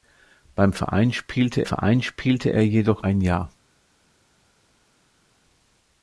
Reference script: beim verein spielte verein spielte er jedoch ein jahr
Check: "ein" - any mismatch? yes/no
no